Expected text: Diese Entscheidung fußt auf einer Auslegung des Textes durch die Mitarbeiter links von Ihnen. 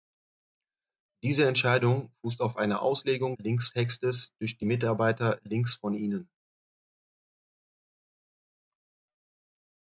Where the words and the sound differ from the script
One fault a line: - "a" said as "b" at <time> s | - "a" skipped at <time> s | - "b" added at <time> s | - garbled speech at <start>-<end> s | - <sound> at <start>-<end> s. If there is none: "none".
- "des" said as "links" at 3.4 s